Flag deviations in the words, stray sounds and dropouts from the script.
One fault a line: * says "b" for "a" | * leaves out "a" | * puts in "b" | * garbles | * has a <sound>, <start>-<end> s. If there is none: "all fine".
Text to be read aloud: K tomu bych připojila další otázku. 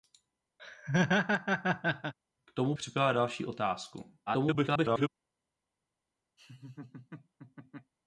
* has a laugh, 0.6-2.1 s
* leaves out "bych"
* garbles
* has a laugh, 6.4-7.9 s